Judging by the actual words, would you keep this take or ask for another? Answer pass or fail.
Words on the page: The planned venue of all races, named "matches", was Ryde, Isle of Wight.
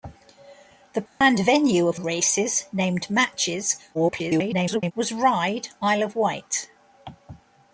fail